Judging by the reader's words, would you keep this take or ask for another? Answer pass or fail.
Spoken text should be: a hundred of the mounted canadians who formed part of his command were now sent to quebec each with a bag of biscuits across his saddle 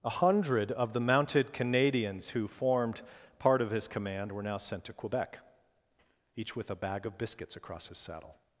pass